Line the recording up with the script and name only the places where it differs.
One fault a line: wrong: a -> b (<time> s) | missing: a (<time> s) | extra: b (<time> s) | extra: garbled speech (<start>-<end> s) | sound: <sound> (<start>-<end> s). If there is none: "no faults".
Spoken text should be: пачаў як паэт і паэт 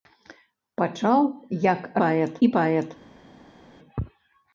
no faults